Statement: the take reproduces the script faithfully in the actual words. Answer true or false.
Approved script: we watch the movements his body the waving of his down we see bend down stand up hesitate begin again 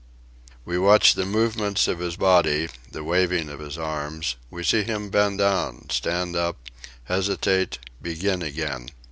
false